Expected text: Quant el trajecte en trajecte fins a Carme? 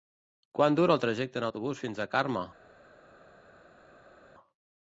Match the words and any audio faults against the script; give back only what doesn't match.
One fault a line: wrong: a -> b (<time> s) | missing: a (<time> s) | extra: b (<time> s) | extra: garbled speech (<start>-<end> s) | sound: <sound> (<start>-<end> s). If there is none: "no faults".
extra: dura (0.8 s)
wrong: trajecte -> autobús (1.5 s)